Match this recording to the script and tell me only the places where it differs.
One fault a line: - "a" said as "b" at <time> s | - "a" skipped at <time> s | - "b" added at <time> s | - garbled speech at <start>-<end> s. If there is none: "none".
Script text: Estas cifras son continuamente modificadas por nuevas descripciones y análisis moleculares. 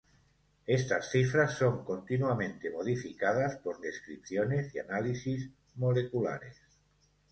- "nuevas" skipped at 3.9 s